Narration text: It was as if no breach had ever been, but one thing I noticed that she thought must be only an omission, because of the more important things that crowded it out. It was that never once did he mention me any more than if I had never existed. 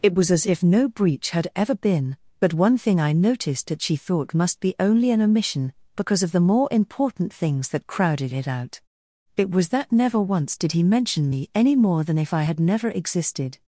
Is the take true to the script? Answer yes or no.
yes